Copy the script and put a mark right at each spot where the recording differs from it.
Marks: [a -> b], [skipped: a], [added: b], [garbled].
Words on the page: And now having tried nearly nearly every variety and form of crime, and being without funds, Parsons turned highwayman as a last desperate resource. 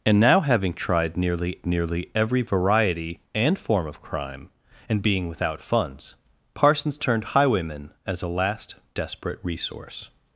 And now having tried nearly nearly every variety and form of crime, and being without funds, Parsons turned highwayman as a last desperate resource.